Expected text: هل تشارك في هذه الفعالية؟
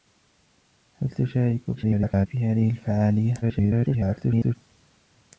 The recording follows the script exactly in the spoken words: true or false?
false